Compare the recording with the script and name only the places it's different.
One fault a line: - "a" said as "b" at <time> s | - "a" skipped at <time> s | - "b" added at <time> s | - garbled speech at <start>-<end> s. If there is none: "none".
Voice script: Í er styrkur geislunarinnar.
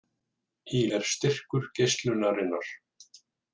none